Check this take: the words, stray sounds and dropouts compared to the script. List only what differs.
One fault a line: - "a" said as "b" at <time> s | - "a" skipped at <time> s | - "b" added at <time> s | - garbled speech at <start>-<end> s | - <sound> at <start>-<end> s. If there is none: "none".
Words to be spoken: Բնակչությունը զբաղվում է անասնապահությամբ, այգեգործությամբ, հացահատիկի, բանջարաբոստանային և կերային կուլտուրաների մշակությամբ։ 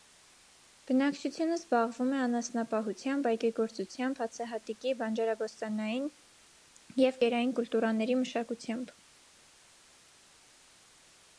none